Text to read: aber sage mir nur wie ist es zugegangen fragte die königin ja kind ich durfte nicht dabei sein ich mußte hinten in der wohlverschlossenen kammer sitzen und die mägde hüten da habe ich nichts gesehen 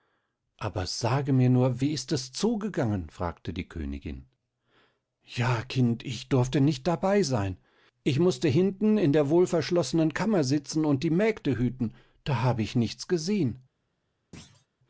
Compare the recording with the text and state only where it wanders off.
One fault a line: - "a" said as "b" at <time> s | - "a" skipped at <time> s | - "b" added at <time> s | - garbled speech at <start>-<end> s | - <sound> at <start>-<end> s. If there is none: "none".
- thud at 14.3-14.7 s